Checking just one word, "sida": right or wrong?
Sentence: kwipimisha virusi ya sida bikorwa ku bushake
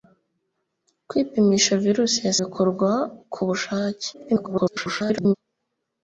wrong